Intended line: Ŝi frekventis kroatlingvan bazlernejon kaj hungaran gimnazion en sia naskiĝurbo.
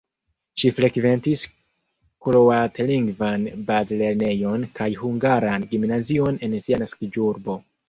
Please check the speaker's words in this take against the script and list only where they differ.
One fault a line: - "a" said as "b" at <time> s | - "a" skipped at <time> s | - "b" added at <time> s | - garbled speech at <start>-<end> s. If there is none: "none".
none